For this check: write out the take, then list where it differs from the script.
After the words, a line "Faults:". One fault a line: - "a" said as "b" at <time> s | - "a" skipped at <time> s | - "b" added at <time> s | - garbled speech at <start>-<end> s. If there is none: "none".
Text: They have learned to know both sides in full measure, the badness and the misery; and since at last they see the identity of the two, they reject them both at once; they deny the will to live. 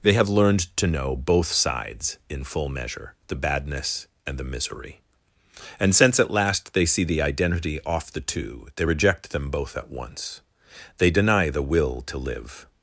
They have learned to know both sides in full measure, the badness and the misery; and since at last they see the identity off the two, they reject them both at once; they deny the will to live.
Faults:
- "of" said as "off" at 7.8 s